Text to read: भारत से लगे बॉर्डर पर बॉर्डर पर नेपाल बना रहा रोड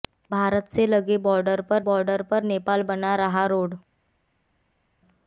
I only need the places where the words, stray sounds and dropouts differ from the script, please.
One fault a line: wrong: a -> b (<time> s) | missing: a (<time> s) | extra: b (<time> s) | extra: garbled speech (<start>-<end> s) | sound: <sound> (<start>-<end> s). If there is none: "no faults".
no faults